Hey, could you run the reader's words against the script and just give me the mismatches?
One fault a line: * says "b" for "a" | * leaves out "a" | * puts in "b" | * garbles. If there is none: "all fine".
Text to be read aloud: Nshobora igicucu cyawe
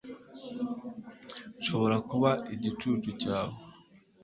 * puts in "kuba"